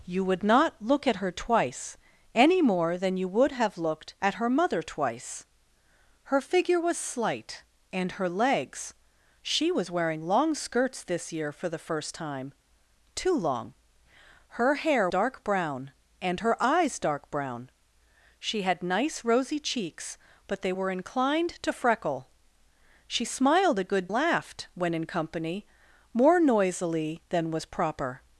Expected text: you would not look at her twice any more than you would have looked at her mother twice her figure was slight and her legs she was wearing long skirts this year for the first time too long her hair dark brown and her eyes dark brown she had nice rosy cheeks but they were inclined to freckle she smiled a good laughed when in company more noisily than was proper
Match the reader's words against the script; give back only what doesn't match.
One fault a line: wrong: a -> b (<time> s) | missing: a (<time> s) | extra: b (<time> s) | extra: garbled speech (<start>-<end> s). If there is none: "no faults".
no faults